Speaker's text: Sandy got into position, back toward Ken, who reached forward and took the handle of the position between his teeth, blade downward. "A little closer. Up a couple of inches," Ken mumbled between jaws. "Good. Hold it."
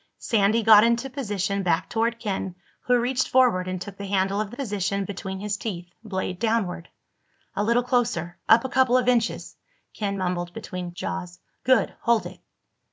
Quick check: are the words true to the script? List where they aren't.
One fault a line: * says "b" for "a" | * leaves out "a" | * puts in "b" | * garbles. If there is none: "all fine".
all fine